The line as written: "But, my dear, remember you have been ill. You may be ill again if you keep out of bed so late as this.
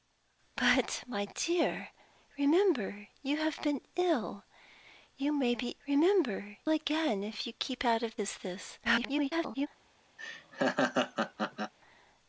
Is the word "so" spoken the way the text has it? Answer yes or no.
no